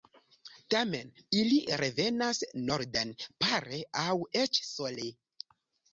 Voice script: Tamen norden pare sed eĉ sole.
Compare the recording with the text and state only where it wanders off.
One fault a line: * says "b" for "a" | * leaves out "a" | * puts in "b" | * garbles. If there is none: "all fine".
* puts in "ili revenas"
* says "aŭ" for "sed"